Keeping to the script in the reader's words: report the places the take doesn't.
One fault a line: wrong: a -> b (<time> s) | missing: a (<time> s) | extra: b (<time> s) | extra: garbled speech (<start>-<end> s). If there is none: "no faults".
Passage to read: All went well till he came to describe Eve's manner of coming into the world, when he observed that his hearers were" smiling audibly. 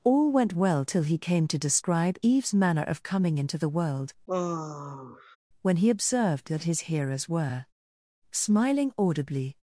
no faults